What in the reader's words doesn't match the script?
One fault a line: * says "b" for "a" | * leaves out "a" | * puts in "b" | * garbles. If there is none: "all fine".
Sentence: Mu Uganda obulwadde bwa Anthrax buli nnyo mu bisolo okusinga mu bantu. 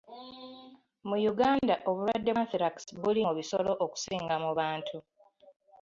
* leaves out "bwa"
* leaves out "nnyo"